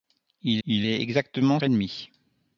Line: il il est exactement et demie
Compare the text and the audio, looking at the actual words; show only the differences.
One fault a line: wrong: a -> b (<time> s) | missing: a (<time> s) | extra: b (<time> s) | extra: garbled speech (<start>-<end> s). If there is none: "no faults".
no faults